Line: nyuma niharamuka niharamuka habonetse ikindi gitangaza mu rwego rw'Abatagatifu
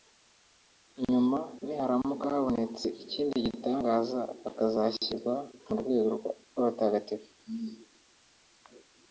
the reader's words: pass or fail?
fail